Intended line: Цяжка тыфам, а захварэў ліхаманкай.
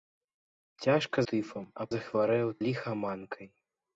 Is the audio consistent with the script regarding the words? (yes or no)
yes